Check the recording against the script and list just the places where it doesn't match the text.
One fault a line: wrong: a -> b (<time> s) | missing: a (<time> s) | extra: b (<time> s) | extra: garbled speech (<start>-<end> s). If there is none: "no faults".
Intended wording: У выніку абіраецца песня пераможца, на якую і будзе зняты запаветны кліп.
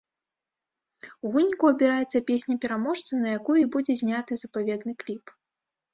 no faults